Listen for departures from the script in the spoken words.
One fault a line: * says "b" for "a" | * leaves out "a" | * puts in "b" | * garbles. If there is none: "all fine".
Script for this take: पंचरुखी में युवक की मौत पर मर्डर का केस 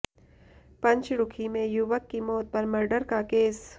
all fine